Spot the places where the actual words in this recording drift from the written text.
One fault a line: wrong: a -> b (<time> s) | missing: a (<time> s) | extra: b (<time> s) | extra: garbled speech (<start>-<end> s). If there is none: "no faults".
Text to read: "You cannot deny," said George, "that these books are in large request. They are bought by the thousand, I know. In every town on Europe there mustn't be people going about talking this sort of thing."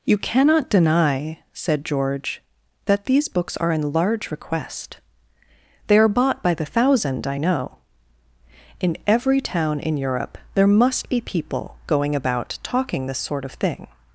wrong: on -> in (9.8 s)
wrong: mustn't -> must (10.7 s)